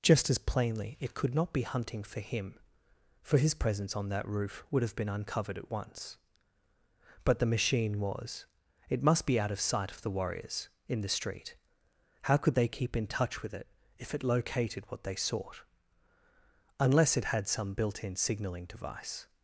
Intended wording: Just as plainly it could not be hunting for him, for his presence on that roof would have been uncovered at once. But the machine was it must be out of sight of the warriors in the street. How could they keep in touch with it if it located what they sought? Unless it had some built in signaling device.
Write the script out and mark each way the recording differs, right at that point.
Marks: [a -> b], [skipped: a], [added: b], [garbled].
Just as plainly it could not be hunting for him, for his presence on that roof would have been uncovered at once. But the machine was it must be out of sight of the warriors in the street. How could they keep in touch with it if it located what they sought? Unless it had some built in signaling device.